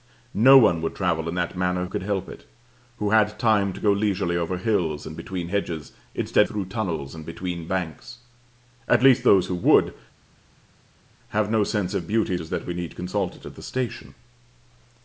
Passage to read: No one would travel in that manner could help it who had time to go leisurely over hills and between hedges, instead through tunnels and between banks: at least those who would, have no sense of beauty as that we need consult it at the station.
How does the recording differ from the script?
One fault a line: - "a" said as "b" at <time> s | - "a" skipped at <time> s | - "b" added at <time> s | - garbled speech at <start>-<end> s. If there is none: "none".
none